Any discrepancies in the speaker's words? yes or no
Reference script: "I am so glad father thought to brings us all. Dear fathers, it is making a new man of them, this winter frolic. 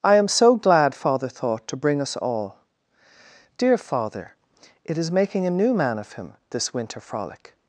yes